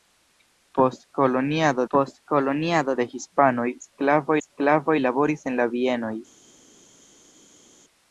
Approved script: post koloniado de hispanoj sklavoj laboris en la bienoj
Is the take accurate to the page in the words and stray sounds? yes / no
no